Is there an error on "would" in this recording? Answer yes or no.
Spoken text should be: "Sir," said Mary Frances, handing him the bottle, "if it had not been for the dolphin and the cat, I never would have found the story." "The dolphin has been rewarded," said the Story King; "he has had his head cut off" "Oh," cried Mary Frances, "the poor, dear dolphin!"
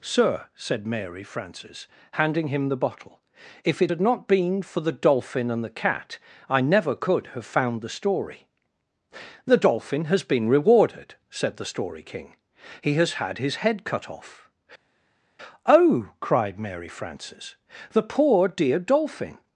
yes